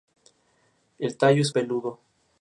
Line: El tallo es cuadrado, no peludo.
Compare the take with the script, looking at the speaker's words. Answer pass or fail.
fail